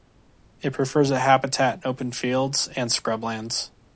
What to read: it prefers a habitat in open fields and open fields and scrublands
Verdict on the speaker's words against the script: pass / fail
fail